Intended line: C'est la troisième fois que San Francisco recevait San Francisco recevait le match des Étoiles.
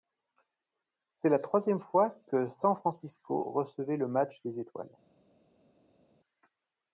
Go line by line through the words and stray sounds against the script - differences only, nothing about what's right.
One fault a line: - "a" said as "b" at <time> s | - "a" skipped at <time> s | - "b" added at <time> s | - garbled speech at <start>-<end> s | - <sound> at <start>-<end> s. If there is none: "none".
- "San Francisco recevait" skipped at 4.0 s